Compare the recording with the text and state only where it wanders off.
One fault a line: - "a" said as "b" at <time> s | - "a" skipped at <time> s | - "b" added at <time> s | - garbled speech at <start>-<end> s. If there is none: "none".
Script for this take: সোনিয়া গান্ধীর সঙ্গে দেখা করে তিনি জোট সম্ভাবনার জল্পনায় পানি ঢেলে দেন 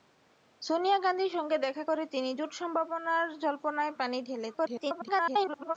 - garbled speech at 4.5-5.8 s